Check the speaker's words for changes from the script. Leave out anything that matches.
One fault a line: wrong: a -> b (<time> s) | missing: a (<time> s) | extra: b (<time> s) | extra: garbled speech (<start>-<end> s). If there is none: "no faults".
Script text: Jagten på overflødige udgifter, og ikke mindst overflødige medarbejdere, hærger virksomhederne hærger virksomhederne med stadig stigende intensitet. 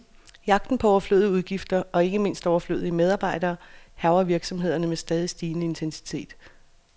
missing: hærger virksomhederne (4.9 s)